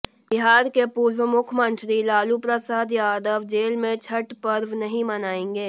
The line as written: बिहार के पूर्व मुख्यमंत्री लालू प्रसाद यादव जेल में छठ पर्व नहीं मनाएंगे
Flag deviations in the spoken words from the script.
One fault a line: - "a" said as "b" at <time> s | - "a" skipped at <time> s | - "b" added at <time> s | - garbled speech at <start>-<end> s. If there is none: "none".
none